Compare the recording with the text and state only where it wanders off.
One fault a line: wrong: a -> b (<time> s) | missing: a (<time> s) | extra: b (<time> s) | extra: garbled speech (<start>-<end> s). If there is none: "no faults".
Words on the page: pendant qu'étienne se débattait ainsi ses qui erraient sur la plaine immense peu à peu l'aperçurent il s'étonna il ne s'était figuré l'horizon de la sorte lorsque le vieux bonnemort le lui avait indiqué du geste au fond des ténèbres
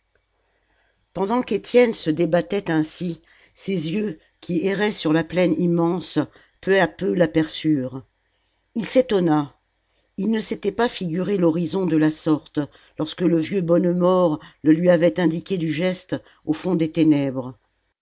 extra: yeux (3.9 s)
extra: pas (10.7 s)